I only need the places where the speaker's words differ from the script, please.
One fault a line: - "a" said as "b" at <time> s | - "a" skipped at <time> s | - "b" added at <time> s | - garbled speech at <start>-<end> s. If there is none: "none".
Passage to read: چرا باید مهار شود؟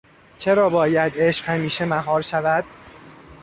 - "عشق همیشه" added at 1.2 s